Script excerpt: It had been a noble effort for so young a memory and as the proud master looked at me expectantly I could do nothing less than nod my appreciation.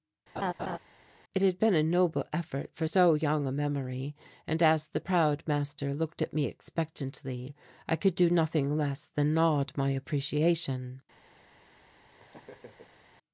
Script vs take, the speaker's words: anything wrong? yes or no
no